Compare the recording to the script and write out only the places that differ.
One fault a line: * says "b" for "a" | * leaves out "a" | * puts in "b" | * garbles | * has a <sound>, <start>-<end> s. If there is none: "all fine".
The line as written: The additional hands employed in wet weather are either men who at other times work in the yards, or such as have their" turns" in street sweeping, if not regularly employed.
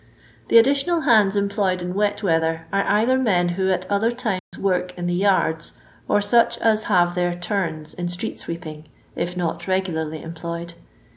* has a dropout, 4.4-4.5 s